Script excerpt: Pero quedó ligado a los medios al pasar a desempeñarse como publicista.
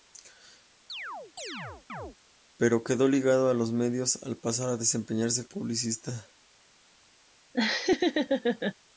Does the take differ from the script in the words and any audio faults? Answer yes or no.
yes